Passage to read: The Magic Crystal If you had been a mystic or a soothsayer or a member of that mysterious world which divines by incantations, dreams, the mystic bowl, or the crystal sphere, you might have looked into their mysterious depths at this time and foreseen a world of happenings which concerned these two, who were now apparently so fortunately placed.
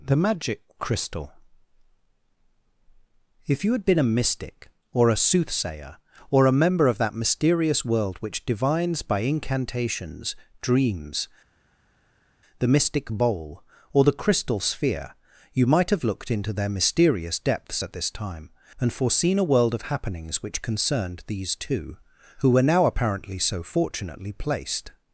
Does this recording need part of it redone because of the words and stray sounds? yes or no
no